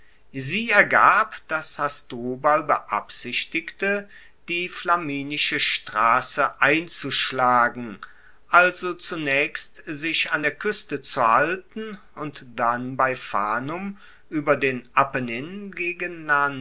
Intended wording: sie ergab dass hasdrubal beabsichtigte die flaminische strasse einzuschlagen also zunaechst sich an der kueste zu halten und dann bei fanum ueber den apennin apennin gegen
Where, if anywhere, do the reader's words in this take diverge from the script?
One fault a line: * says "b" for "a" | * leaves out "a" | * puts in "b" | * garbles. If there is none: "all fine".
* leaves out "apennin"